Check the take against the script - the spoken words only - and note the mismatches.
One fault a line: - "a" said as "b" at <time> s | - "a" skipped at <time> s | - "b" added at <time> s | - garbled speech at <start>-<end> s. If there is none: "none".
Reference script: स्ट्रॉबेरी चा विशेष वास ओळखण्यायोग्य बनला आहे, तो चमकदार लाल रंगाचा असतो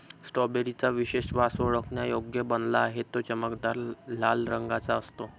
none